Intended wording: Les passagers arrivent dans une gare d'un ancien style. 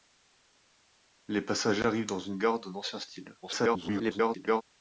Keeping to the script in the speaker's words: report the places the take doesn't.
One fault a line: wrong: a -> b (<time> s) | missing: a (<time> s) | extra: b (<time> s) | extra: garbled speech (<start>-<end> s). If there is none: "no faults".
extra: garbled speech (3.4-4.6 s)